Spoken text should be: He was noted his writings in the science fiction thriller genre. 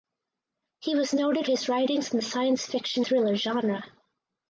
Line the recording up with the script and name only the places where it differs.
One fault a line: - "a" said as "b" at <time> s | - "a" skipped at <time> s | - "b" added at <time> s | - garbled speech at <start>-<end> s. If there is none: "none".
none